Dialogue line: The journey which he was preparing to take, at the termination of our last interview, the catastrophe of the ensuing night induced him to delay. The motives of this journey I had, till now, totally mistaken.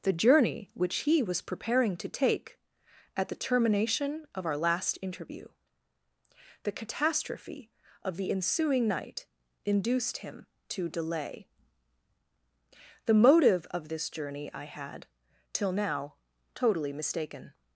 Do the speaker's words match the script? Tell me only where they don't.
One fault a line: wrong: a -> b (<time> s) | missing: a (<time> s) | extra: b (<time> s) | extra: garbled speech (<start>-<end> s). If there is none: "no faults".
wrong: motives -> motive (13.1 s)